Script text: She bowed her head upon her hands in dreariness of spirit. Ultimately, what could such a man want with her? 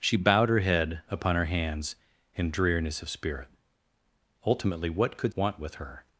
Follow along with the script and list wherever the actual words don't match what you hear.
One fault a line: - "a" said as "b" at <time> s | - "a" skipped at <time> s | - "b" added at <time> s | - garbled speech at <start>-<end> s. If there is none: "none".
- "such a man" skipped at 5.3 s